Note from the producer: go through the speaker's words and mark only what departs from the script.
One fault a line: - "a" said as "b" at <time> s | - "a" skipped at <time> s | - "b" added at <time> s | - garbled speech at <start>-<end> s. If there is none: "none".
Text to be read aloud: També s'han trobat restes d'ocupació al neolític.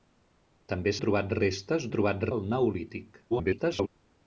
- "s'han" skipped at 0.9 s
- "d'ocupació" said as "trobat" at 1.9 s
- garbled speech at 3.3-3.9 s